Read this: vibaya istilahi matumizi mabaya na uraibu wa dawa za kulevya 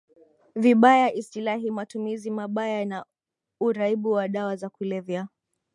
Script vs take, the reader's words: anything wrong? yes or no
no